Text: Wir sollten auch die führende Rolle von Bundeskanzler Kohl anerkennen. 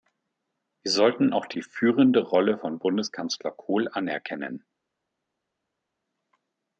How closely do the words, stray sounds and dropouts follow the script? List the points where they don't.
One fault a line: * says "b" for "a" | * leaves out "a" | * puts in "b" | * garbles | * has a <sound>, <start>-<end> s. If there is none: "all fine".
all fine